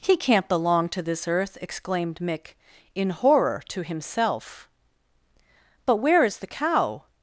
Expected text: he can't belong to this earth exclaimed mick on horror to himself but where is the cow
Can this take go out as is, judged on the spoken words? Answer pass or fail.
fail